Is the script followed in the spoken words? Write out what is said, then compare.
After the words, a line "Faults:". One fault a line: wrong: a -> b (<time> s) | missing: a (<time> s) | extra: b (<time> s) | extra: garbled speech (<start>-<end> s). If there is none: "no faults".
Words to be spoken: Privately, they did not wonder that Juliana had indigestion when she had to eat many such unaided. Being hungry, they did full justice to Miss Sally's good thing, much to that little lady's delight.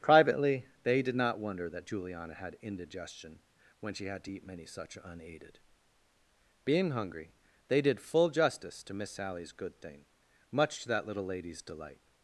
Privately, they did not wonder that Juliana had indigestion when she had to eat many such unaided. Being hungry, they did full justice to Miss Sally's good thing, much to that little lady's delight.
Faults:
no faults